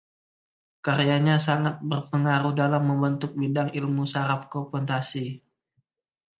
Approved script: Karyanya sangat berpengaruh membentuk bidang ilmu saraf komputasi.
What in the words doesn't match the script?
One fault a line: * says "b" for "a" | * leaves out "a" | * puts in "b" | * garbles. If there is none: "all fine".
* puts in "dalam"